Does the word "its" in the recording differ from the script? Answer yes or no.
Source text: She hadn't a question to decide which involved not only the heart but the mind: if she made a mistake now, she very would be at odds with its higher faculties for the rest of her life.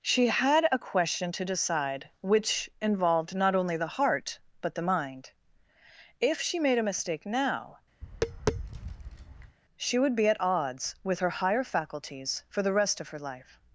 yes